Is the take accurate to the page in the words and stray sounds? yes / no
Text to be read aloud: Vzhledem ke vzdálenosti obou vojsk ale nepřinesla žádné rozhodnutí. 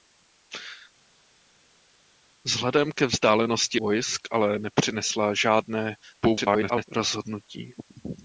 no